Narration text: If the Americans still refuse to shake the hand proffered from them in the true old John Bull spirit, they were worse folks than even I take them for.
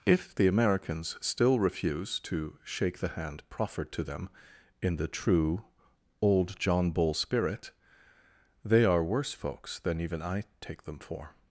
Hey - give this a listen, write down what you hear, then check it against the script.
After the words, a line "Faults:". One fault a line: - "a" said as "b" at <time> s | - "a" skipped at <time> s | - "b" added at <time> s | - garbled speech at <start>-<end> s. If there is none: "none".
If the Americans still refuse to shake the hand proffered to them in the true old John Bull spirit, they are worse folks than even I take them for.
Faults:
- "from" said as "to" at 3.9 s
- "were" said as "are" at 8.8 s